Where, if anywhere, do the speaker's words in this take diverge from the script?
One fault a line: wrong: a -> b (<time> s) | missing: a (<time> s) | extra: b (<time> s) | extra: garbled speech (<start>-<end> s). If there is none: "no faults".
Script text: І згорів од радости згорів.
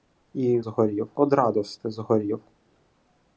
no faults